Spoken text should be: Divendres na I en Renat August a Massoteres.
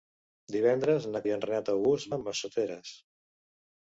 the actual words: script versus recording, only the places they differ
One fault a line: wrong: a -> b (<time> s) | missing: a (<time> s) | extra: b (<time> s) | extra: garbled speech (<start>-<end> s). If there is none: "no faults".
no faults